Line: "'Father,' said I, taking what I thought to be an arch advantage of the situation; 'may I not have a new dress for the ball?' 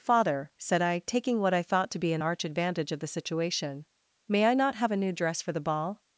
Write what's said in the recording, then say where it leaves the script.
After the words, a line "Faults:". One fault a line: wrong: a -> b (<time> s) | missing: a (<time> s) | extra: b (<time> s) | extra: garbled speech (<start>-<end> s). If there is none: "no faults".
"'Father,' said I, taking what I thought to be an arch advantage of the situation; 'may I not have a new dress for the ball?'
Faults:
no faults